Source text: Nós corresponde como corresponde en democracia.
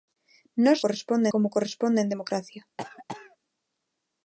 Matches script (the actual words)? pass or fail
pass